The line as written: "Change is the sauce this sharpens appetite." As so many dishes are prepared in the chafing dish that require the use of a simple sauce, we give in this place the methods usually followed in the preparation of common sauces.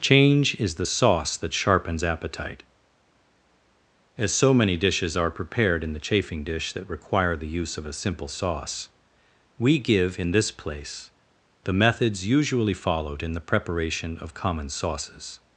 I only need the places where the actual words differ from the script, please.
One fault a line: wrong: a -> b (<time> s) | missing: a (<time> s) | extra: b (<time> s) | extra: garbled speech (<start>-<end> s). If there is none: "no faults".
wrong: this -> that (1.3 s)